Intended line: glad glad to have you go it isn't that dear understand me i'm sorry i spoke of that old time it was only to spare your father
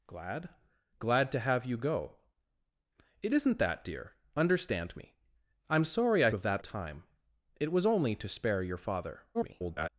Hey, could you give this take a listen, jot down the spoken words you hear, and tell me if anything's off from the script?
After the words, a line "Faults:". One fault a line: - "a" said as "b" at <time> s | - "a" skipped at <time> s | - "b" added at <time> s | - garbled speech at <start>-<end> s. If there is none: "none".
glad glad to have you go it isn't that dear understand me i'm sorry i of that time it was only to spare your father [garbled]
Faults:
- "spoke" skipped at 6.3 s
- "old" skipped at 6.6 s
- garbled speech at 9.3-9.9 s